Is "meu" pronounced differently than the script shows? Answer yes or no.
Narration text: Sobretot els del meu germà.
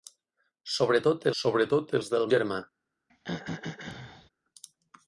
yes